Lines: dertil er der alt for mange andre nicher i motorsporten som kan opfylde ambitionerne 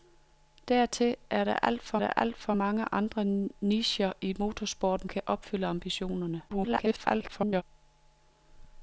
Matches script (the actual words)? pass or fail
fail